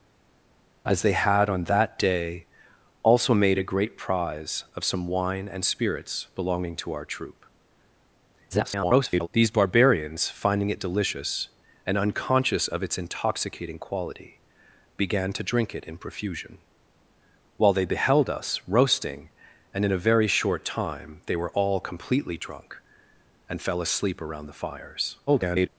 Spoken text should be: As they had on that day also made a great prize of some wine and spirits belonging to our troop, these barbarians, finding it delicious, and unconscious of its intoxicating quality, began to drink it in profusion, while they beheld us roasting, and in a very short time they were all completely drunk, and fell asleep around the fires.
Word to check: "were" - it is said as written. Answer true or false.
true